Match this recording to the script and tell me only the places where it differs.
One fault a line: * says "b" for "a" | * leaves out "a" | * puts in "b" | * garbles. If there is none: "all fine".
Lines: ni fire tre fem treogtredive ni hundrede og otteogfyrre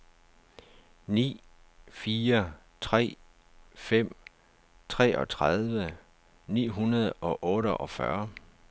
all fine